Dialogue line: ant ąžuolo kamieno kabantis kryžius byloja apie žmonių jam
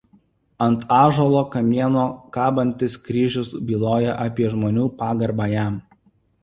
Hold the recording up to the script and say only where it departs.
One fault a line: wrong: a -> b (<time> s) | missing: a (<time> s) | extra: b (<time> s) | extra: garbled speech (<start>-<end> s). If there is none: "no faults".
extra: pagarbą (5.0 s)